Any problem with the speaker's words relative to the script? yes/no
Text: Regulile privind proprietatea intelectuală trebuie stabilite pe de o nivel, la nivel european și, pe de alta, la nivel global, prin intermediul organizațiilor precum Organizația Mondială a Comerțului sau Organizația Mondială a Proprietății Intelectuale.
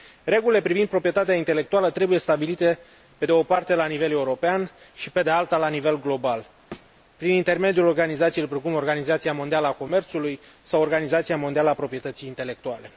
yes